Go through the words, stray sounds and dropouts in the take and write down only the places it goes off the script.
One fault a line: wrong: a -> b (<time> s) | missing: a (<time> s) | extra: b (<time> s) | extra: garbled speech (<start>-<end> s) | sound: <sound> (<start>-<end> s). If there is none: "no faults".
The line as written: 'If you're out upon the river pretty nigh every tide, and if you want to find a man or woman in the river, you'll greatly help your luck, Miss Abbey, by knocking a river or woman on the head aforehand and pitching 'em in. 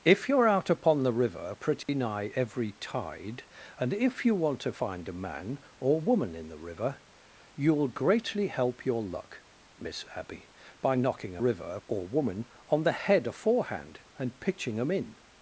sound: dropout (1.8-1.9 s)